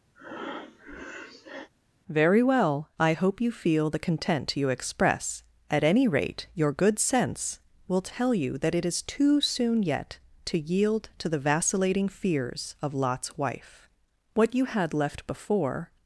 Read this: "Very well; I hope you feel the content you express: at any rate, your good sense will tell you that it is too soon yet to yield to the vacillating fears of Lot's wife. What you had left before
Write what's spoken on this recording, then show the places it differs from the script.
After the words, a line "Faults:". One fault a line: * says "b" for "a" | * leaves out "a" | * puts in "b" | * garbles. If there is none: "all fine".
"Very well; I hope you feel the content you express: at any rate, your good sense will tell you that it is too soon yet to yield to the vacillating fears of Lot's wife. What you had left before
Faults:
all fine